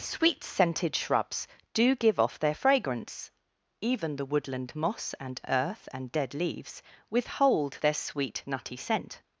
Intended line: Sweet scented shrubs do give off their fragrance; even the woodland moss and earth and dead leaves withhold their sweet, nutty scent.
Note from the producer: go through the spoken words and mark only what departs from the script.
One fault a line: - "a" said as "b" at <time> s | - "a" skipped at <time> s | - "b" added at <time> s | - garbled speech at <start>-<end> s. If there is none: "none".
none